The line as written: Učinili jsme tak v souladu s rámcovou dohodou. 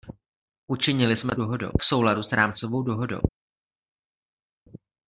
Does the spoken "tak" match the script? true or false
false